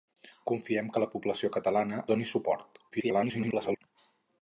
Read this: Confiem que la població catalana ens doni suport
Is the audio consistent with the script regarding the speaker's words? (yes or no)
no